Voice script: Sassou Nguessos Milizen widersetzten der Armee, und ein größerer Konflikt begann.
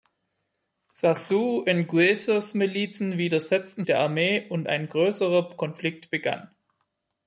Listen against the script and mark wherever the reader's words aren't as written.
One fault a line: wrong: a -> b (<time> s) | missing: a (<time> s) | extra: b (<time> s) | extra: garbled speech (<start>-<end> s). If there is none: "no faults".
no faults